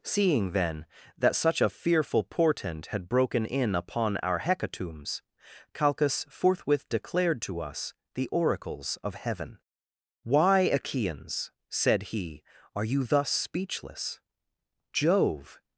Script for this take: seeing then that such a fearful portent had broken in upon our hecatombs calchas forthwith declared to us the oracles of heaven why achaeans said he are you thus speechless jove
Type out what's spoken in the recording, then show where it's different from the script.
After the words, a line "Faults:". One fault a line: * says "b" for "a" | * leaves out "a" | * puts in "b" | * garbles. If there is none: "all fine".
seeing then that such a fearful portent had broken in upon our hecatombs calchas forthwith declared to us the oracles of heaven why achaeans said he are you thus speechless jove
Faults:
all fine